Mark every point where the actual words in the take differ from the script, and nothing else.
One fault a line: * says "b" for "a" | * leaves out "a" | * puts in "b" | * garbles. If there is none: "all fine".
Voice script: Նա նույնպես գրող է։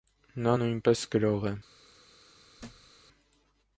all fine